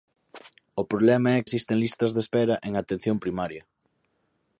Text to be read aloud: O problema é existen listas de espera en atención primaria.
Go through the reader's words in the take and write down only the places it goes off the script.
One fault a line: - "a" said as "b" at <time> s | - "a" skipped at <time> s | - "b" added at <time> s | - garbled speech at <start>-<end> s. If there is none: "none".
none